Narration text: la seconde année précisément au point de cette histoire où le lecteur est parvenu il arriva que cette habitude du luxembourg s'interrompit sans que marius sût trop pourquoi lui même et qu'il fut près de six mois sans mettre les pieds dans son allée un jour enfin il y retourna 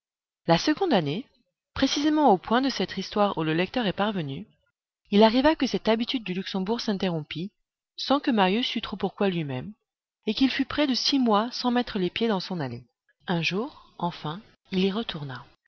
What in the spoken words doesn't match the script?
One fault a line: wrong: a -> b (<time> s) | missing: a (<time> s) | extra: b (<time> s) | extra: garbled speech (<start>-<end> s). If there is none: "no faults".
no faults